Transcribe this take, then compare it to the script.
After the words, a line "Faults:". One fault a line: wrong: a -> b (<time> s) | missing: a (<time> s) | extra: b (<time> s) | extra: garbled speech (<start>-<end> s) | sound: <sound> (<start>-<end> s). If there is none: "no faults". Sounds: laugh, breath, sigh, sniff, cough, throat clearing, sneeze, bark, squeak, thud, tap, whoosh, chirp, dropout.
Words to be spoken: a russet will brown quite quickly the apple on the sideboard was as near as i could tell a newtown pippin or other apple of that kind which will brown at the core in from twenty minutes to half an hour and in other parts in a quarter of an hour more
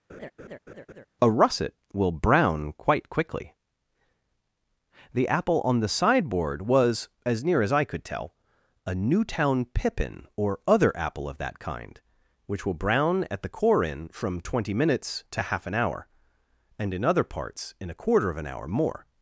a russet will brown quite quickly the apple on the sideboard was as near as i could tell a newtown pippin or other apple of that kind which will brown at the core in from twenty minutes to half an hour and in other parts in a quarter of an hour more
Faults:
sound: laugh (0.1-1.1 s)